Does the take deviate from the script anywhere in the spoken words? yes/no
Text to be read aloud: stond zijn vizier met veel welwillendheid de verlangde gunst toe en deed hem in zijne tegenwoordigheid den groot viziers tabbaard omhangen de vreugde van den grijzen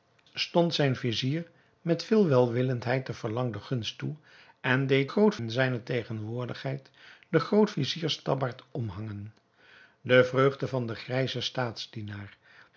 yes